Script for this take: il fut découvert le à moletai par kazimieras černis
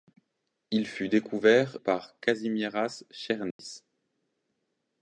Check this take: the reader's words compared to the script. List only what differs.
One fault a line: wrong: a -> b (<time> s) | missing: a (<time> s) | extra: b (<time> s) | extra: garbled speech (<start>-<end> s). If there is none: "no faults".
missing: le à moletai (1.8 s)